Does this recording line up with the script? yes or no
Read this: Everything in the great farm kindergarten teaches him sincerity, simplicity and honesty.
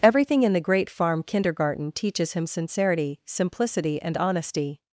yes